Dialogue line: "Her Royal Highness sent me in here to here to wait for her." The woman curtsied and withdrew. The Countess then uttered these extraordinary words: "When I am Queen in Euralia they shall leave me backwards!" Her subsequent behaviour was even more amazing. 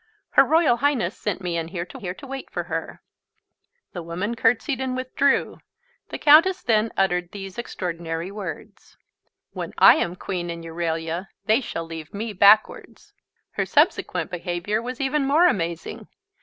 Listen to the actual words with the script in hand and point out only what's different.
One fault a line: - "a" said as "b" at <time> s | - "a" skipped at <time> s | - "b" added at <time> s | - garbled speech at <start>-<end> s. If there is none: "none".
none